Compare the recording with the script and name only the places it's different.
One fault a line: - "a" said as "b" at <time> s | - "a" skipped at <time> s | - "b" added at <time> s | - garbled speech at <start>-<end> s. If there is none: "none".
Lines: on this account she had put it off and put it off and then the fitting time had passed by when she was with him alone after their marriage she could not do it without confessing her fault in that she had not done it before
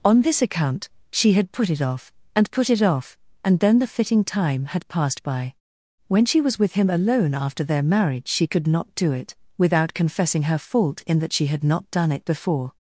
none